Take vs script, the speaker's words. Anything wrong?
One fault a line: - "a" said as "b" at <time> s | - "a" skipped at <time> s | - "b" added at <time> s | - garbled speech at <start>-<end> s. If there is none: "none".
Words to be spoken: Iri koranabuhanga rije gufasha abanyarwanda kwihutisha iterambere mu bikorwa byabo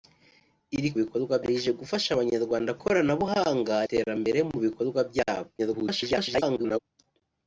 - "koranabuhanga" said as "bikorwa" at 1.0 s
- "kwihutisha" said as "koranabuhanga" at 2.8 s
- garbled speech at 5.6-6.8 s